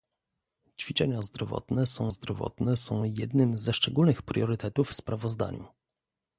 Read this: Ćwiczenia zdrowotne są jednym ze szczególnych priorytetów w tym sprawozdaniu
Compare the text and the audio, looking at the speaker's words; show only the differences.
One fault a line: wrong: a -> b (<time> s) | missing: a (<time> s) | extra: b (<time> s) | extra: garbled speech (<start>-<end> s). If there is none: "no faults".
extra: zdrowotne są (2.1 s)
missing: w tym (4.9 s)